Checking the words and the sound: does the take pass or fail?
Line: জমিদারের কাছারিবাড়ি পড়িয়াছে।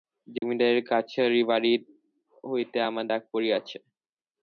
fail